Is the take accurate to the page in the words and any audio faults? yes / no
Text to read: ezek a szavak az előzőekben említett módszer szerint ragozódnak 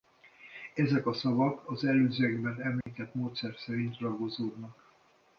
no